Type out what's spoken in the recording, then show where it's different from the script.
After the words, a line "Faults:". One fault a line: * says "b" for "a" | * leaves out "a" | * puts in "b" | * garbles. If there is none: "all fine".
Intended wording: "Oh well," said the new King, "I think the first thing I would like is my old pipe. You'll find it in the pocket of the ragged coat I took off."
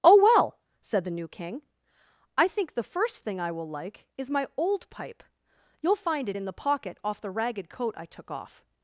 "Oh well," said the new King, "I think the first thing I will like is my old pipe. You'll find it in the pocket off the ragged coat I took off."
Faults:
* says "will" for "would"
* says "off" for "of"